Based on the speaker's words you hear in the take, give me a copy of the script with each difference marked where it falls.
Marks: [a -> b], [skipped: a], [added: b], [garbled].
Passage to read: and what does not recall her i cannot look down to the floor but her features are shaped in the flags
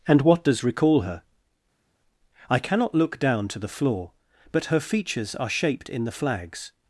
and what does [skipped: not] recall her i cannot look down to the floor but her features are shaped in the flags